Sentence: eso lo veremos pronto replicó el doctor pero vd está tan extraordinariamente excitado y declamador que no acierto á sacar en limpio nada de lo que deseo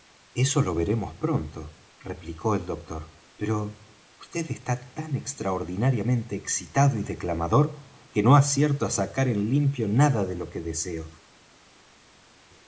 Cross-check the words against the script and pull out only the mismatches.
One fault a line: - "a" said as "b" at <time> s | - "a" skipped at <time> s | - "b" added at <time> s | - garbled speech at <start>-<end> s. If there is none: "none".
none